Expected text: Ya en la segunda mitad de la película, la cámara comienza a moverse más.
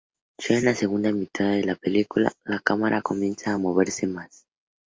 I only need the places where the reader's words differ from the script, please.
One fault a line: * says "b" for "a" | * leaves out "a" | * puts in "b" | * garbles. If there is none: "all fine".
all fine